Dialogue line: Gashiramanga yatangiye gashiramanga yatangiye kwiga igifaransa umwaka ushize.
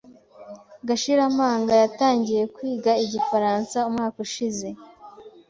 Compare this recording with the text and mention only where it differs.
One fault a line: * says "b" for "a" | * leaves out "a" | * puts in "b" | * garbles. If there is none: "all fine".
* leaves out "gashiramanga yatangiye"